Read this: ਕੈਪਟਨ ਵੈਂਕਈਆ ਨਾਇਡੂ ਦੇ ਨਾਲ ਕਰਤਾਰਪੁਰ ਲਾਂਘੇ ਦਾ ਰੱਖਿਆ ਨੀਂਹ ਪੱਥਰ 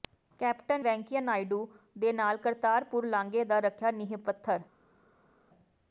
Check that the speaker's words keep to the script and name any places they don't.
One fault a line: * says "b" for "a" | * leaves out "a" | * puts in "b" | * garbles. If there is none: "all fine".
all fine